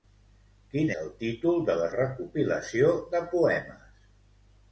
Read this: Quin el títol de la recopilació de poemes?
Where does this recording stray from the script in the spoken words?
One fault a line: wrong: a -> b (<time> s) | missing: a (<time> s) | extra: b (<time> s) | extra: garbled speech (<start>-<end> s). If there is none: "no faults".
no faults